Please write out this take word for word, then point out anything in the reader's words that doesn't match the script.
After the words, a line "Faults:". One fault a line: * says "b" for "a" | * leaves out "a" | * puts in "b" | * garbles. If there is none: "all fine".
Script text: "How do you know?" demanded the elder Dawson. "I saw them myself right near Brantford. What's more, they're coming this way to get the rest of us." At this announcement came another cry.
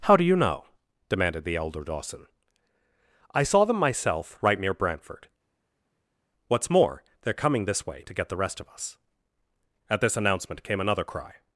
"How do you know?" demanded the elder Dawson. "I saw them myself right near Brantford. What's more, they're coming this way to get the rest of us." At this announcement came another cry.
Faults:
all fine